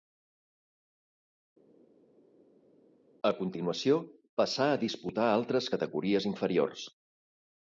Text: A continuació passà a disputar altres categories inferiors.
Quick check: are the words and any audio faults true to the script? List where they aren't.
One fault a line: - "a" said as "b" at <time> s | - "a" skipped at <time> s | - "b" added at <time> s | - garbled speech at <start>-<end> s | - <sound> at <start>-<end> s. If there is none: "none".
none